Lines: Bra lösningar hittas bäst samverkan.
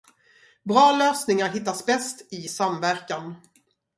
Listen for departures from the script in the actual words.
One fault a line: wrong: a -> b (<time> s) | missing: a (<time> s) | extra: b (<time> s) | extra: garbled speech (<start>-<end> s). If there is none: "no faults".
extra: i (2.3 s)